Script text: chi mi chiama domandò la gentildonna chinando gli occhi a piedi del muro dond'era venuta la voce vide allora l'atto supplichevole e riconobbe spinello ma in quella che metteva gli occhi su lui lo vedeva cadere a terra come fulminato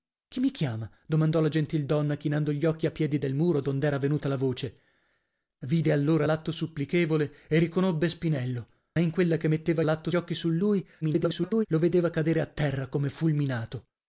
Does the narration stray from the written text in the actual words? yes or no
yes